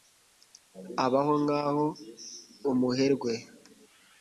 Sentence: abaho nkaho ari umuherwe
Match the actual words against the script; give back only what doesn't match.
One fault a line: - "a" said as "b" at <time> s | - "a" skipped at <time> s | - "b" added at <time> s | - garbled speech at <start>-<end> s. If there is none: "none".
- "ari" skipped at 1.9 s